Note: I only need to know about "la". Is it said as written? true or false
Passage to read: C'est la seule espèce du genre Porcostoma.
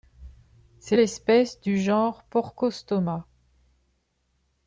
false